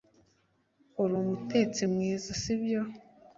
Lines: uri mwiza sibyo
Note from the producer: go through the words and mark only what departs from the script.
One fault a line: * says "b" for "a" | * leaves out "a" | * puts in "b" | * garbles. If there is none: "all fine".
* puts in "umutetsi"